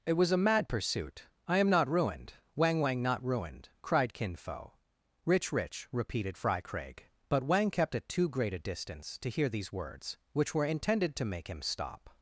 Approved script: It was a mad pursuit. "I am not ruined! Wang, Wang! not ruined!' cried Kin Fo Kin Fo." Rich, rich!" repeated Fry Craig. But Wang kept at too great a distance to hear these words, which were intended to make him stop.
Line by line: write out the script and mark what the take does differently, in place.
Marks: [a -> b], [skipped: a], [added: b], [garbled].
It was a mad pursuit. "I am not ruined! Wang, Wang! not ruined!' cried Kin Fo [skipped: Kin Fo."] Rich, rich!" repeated Fry Craig. But Wang kept at too great a distance to hear these words, which were intended to make him stop.